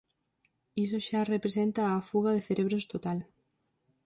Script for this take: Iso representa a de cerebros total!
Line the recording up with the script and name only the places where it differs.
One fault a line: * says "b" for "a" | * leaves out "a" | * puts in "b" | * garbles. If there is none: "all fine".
* puts in "xa"
* puts in "fuga"